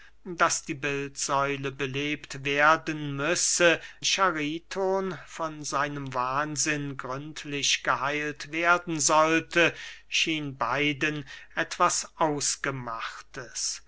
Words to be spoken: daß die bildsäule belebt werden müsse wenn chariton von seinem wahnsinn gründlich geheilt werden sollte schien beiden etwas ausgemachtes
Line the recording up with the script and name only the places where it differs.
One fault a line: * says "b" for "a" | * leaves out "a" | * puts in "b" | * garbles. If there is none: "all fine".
* leaves out "wenn"